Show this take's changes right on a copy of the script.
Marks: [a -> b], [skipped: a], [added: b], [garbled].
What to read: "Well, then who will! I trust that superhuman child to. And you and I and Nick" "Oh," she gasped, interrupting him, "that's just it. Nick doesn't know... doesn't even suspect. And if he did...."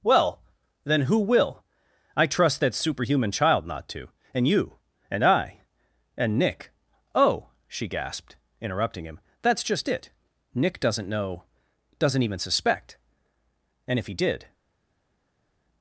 "Well, then who will! I trust that superhuman child [added: not] to. And you and I and Nick" "Oh," she gasped, interrupting him, "that's just it. Nick doesn't know... doesn't even suspect. And if he did...."